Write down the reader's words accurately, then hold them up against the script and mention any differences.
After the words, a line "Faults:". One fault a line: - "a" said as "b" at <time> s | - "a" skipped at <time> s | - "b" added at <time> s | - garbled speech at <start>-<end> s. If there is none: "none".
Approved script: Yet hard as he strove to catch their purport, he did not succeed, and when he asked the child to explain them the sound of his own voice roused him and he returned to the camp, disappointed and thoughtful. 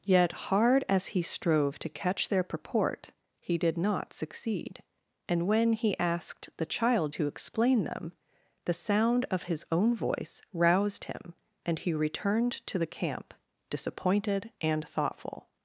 Yet hard as he strove to catch their purport, he did not succeed, and when he asked the child to explain them the sound of his own voice roused him and he returned to the camp, disappointed and thoughtful.
Faults:
none